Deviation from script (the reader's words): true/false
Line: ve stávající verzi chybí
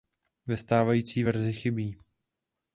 false